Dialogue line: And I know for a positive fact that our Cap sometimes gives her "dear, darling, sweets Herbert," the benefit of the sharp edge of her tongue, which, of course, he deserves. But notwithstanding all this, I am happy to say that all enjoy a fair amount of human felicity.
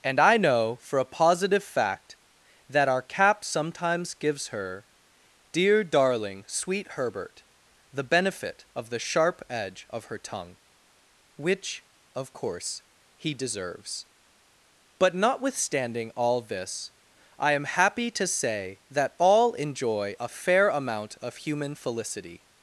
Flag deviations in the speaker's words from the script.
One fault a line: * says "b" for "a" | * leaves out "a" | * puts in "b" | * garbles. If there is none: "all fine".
* says "sweet" for "sweets"